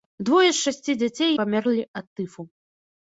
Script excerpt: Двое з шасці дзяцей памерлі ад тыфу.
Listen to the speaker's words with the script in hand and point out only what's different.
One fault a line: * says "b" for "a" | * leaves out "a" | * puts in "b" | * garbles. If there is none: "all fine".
all fine